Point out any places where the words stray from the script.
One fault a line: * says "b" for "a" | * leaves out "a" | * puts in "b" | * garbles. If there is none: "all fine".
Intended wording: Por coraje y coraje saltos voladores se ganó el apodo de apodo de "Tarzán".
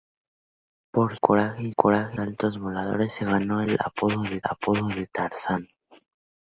all fine